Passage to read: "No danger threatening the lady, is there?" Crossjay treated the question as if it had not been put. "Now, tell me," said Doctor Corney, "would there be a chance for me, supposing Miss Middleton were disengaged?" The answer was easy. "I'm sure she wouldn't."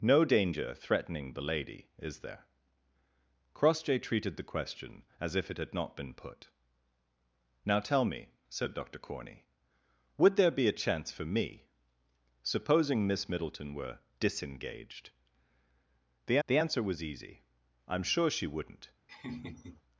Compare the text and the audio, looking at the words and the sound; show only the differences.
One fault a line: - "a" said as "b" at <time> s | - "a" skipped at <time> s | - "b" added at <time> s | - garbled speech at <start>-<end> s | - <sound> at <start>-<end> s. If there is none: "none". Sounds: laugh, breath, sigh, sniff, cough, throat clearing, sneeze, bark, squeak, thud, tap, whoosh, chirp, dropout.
- "the" added at 16.5 s
- laugh at 19.1-19.8 s